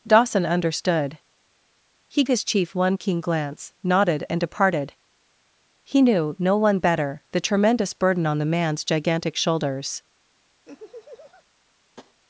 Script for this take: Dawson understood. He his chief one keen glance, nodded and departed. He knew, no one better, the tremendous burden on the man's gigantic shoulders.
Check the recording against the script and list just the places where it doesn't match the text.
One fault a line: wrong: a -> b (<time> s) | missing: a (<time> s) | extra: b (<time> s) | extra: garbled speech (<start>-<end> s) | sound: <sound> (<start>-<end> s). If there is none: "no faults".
sound: laugh (10.6-11.4 s)
sound: tap (12.0-12.2 s)